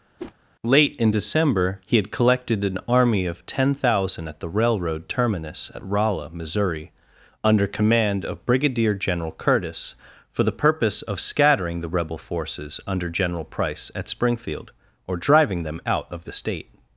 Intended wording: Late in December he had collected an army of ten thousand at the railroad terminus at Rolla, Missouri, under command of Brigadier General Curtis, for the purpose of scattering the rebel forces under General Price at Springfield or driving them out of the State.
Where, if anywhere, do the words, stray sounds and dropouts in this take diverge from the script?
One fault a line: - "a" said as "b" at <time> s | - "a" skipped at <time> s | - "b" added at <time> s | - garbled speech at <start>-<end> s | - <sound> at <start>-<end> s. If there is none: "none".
- whoosh at 0.2-0.3 s